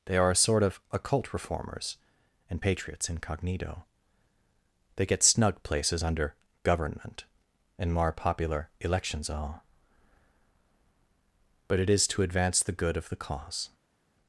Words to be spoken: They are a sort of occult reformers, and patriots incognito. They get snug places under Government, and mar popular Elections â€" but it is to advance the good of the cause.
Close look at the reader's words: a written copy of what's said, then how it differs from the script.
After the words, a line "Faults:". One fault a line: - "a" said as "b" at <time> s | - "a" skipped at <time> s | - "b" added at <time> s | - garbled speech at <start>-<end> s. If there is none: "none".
They are a sort of occult reformers, and patriots incognito. They get snug places under Government, and more popular Elections all€" but it is to advance the good of the cause.
Faults:
- "mar" said as "more" at 7.9 s
- "â" said as "all" at 9.3 s